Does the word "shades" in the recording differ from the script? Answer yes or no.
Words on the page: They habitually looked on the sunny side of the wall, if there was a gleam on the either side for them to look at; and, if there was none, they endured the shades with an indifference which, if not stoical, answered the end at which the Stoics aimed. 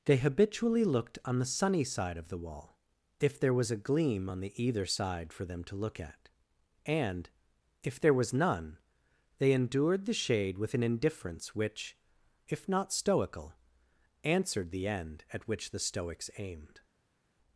yes